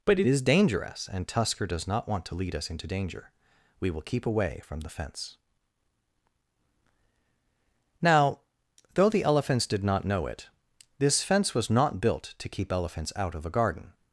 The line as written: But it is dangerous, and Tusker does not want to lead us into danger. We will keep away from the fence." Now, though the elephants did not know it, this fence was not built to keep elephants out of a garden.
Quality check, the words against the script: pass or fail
pass